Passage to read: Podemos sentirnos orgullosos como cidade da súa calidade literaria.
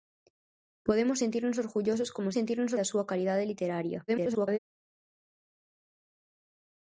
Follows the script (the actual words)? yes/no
no